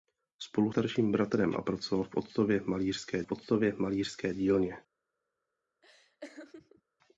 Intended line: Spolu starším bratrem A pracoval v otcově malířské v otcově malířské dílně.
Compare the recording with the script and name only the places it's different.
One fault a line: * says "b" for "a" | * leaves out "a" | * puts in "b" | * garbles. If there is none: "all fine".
all fine